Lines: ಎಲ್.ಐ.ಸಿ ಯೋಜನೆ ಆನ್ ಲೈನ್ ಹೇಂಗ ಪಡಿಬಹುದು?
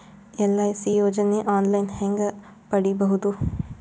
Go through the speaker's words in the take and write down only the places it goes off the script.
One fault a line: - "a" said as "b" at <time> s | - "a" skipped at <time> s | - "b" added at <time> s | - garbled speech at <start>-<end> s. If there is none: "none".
none